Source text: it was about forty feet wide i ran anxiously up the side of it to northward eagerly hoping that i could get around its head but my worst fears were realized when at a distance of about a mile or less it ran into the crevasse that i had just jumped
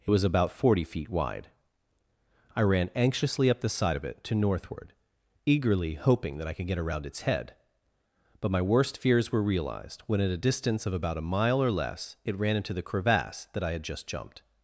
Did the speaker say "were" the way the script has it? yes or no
yes